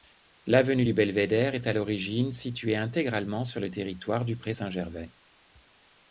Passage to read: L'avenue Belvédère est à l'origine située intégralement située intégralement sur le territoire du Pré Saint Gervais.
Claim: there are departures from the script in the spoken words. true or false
true